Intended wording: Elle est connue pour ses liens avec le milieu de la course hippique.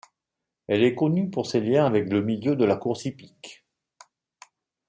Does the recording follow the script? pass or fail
pass